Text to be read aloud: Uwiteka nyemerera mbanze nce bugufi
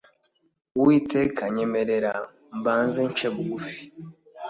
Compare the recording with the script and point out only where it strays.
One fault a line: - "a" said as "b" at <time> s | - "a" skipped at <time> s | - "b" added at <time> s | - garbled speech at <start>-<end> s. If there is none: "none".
none